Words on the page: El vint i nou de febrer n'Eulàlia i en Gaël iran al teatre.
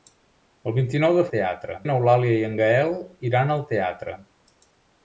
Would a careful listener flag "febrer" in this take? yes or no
yes